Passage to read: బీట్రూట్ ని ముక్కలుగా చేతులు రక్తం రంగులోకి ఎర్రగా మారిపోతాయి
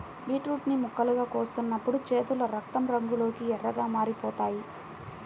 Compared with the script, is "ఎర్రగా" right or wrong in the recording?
right